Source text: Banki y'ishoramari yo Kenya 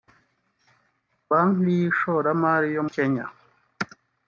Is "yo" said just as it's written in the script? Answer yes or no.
yes